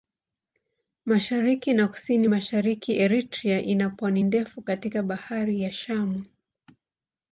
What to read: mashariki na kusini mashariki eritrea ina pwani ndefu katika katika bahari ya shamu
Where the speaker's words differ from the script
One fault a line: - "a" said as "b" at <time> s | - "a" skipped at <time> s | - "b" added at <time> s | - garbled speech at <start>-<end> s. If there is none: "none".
- "katika" skipped at 5.0 s